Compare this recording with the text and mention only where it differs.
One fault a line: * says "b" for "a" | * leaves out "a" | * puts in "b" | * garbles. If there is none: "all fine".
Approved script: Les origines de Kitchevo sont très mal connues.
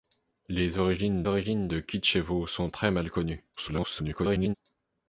* puts in "origines"
* garbles